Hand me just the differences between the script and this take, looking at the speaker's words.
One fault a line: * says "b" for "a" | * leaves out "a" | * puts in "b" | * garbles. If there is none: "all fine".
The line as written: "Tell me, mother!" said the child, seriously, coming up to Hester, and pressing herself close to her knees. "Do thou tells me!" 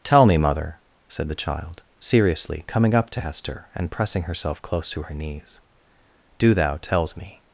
all fine